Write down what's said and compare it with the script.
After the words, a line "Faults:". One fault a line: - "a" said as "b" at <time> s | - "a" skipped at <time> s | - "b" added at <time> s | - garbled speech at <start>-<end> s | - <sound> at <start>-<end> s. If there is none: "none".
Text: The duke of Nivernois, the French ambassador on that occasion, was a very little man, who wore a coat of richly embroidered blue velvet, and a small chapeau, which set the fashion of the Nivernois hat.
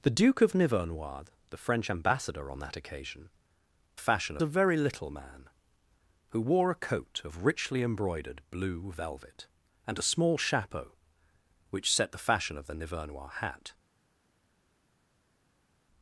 The duke of Nivernois, the French ambassador on that occasion, fashion a very little man, who wore a coat of richly embroidered blue velvet, and a small chapeau, which set the fashion of the Nivernois hat.
Faults:
- "was" said as "fashion" at 4.0 s